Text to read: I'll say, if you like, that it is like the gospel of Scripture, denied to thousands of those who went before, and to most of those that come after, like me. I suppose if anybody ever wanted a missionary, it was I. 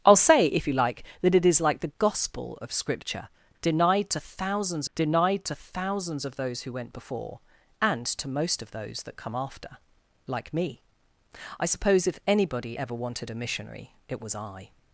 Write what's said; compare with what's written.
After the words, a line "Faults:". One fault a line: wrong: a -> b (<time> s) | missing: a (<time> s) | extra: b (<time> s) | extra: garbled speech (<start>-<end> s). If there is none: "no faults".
I'll say, if you like, that it is like the gospel of Scripture, denied to thousands denied to thousands of those who went before, and to most of those that come after, like me. I suppose if anybody ever wanted a missionary, it was I.
Faults:
extra: denied to thousands (4.9 s)